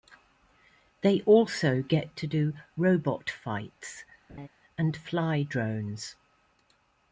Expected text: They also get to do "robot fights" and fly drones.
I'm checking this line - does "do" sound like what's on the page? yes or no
yes